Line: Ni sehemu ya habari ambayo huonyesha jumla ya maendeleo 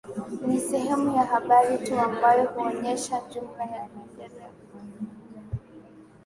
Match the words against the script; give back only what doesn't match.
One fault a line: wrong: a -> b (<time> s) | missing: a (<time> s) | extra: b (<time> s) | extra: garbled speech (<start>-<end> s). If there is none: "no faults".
extra: tu (1.9 s)